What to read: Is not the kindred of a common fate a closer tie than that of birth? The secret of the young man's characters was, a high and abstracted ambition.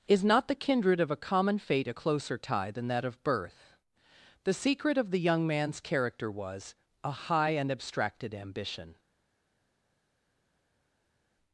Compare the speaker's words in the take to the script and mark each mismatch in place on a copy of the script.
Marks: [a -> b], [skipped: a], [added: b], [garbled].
Is not the kindred of a common fate a closer tie than that of birth? The secret of the young man's [characters -> character] was, a high and abstracted ambition.